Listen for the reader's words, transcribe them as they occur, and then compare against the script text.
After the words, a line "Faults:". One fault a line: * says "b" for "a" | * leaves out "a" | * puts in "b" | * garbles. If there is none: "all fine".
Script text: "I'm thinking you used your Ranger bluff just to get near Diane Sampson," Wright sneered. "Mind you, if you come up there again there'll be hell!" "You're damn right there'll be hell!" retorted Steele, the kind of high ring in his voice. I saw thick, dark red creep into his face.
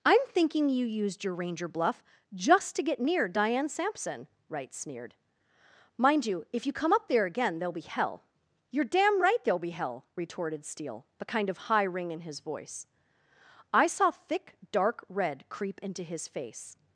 "I'm thinking you used your Ranger bluff just to get near Diane Sampson," Wright sneered. "Mind you, if you come up there again there'll be hell!" "You're damn right there'll be hell!" retorted Steele, the kind of high ring in his voice. I saw thick, dark red creep into his face.
Faults:
all fine